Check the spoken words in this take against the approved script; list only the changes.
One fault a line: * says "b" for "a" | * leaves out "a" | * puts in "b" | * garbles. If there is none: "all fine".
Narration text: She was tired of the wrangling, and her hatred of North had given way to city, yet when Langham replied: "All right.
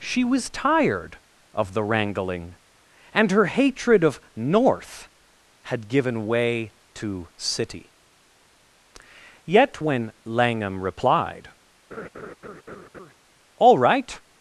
all fine